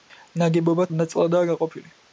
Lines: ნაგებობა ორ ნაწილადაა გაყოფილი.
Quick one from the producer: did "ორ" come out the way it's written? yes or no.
yes